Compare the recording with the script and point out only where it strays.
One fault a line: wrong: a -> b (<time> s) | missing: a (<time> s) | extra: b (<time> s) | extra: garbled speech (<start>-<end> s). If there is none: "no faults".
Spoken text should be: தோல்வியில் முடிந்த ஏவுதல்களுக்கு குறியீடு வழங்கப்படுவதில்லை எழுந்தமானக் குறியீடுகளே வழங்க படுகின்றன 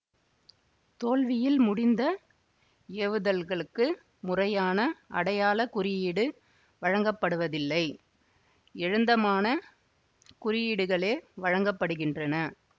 extra: முறையான அடையாள (4.2 s)